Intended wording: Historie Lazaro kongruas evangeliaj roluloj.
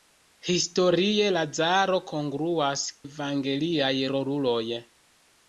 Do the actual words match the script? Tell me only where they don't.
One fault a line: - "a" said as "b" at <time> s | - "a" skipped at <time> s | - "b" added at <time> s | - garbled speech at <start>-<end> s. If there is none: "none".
none